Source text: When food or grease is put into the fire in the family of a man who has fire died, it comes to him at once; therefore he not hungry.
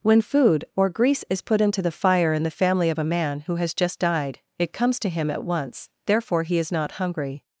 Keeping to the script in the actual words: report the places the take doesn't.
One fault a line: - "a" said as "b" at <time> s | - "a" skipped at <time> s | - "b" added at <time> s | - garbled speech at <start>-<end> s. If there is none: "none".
- "fire" said as "just" at 3.8 s
- "is" added at 6.6 s